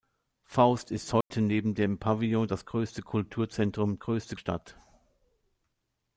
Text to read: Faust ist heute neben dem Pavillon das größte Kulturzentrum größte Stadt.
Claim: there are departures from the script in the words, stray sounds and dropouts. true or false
true